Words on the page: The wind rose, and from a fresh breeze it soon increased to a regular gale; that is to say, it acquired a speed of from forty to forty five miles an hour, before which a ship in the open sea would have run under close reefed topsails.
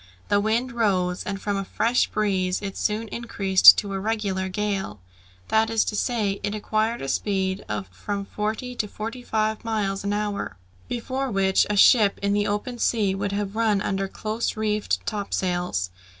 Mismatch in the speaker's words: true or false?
false